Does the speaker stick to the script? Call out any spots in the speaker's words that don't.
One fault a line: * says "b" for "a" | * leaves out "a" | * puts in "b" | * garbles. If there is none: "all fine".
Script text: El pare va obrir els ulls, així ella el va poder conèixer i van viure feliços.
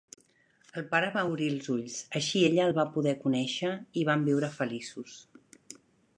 all fine